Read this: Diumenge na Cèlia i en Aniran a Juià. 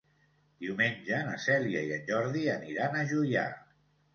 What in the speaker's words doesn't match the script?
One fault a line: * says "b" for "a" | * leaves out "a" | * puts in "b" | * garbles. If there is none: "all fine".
* puts in "Jordi"